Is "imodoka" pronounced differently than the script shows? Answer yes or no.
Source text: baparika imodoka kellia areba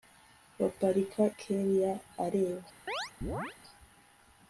yes